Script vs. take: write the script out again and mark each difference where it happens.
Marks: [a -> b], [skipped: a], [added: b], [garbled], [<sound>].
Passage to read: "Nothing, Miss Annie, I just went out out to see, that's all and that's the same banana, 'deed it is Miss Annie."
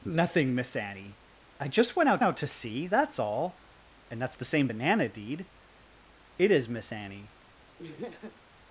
"Nothing, Miss Annie, I just went out out to see, that's all and that's the same banana, 'deed it is Miss Annie." [laugh]